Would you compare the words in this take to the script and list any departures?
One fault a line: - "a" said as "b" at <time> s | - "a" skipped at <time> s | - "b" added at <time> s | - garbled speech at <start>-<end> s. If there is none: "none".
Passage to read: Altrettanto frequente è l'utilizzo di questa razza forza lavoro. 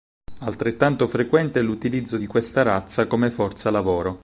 - "come" added at 3.0 s